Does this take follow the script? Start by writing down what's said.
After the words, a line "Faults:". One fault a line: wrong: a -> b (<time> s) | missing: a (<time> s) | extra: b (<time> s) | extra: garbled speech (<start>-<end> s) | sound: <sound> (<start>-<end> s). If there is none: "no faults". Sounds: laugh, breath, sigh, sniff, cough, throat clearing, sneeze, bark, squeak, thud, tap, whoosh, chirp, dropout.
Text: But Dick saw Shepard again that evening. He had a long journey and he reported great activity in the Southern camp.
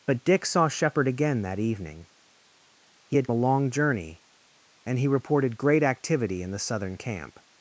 But Dick saw Shepard again that evening. He had a long journey and he reported great activity in the Southern camp.
Faults:
no faults